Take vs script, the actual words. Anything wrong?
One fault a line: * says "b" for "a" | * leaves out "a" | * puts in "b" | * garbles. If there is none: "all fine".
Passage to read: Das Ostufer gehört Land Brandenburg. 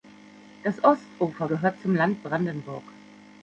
* puts in "zum"